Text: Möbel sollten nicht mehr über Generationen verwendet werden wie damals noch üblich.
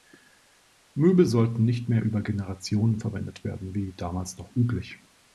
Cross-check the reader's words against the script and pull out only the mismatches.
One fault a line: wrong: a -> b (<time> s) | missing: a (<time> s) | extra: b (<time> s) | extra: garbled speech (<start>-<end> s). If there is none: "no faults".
no faults